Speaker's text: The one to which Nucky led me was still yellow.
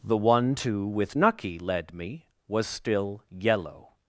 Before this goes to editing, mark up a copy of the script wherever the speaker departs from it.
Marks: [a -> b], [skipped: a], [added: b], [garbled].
The one to [which -> with] Nucky led me was still yellow.